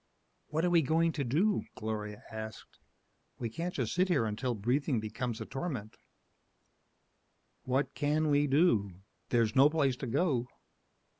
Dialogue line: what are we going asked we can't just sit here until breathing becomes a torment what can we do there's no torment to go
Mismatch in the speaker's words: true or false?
true